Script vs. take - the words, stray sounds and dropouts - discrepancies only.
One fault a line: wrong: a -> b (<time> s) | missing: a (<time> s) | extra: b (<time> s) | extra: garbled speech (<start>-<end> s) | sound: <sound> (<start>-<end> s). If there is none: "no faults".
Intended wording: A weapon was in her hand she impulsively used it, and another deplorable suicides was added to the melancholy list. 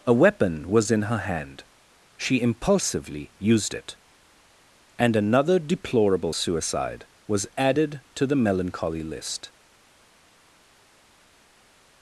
wrong: suicides -> suicide (6.3 s)